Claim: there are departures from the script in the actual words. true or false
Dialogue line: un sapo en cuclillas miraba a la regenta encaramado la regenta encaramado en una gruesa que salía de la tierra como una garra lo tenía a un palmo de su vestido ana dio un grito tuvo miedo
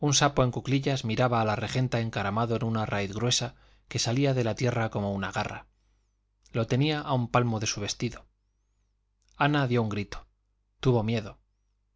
true